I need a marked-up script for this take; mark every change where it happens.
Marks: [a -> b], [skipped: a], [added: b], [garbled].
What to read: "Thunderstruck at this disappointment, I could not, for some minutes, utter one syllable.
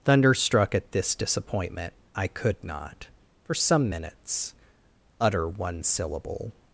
"Thunderstruck at this disappointment, I could not, for some minutes, utter one syllable.